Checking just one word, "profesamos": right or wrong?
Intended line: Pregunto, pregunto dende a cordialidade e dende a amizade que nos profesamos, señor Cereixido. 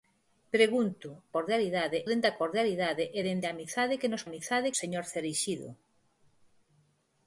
wrong